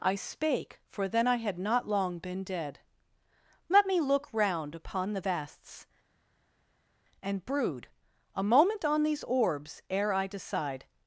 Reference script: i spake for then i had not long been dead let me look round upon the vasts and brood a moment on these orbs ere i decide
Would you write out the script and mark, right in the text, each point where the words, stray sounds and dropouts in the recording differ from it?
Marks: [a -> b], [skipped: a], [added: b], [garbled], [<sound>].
i spake for then i had not long been dead let me look round upon the vasts and brood a moment on these orbs ere i decide